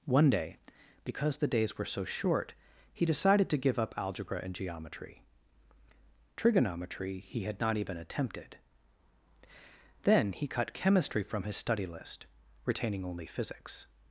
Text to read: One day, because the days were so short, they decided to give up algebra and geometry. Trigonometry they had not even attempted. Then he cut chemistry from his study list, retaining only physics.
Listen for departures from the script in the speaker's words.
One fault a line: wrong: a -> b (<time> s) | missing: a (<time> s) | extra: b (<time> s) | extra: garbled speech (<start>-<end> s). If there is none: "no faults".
wrong: they -> he (2.9 s)
wrong: they -> he (7.2 s)